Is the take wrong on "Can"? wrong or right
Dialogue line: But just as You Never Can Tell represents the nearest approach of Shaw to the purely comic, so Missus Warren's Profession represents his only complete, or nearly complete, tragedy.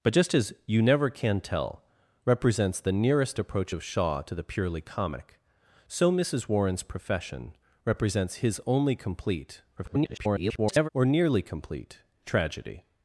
right